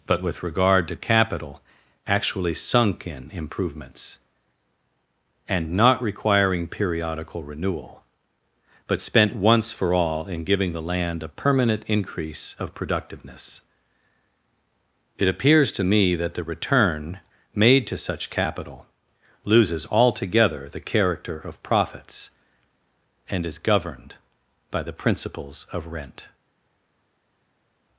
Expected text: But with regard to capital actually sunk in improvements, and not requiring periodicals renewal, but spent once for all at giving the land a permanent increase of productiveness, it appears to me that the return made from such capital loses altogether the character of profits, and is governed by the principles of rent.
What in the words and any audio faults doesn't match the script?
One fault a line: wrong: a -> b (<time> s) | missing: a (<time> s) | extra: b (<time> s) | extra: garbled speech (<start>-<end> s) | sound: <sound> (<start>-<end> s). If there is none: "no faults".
wrong: periodicals -> periodical (6.7 s)
wrong: at -> in (10.2 s)
wrong: from -> to (17.9 s)